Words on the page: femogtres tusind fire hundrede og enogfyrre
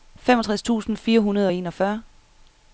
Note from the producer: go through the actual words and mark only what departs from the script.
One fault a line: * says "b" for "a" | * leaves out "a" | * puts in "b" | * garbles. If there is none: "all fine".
all fine